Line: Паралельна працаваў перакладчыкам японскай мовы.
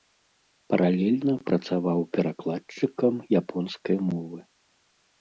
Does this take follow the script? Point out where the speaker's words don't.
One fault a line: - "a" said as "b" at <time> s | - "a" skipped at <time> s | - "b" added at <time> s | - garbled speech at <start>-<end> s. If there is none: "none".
none